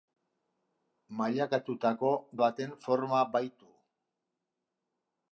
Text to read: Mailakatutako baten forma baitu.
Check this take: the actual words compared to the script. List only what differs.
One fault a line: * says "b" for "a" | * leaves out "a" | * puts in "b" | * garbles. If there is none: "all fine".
all fine